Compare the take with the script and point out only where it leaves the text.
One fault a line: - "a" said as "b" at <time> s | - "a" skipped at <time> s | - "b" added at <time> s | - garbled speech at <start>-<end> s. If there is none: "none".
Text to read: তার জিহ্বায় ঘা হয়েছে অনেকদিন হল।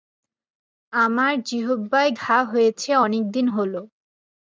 - "তার" said as "আমার" at 0.9 s